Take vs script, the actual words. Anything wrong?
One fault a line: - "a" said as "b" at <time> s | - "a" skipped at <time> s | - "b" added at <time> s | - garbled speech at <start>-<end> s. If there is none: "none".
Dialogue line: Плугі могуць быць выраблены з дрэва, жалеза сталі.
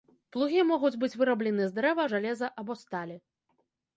- "або" added at 2.6 s